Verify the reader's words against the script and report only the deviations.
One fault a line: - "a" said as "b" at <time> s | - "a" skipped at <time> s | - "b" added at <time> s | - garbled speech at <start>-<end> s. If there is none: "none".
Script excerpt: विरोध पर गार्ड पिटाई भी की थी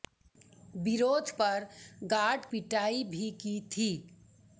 none